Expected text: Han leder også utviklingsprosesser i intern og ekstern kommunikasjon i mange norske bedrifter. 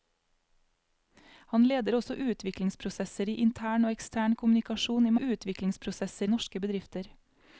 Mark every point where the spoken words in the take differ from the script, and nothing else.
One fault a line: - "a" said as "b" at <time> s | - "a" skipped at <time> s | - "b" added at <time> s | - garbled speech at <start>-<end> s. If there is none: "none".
- "mange" said as "utviklingsprosesser" at 5.2 s